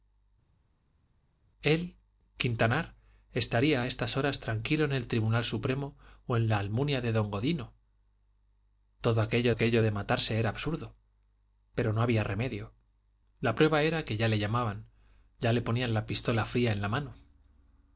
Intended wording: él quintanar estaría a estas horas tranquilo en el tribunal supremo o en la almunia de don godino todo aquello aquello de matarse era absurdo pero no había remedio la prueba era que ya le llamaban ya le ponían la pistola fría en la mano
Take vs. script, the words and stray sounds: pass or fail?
pass